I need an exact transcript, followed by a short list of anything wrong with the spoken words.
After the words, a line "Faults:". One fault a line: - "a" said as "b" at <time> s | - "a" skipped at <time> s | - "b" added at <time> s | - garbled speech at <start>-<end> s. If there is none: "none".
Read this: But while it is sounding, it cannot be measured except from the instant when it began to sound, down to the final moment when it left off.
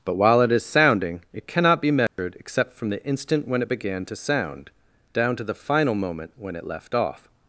But while it is sounding, it cannot be measured except from the instant when it began to sound, down to the final moment when it left off.
Faults:
none